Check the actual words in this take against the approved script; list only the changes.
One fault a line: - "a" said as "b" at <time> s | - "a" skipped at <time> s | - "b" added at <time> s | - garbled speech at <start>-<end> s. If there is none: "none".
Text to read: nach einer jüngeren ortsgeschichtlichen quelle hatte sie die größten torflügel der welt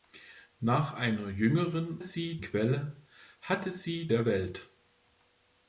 - "ortsgeschichtlichen" said as "sie" at 2.0 s
- "die größten torflügel" skipped at 4.1 s